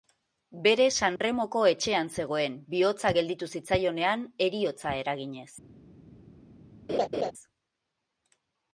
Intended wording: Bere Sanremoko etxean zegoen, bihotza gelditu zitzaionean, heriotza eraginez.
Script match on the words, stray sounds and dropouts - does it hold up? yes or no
no